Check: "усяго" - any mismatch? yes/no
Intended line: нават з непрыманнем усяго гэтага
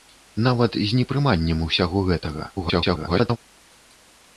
no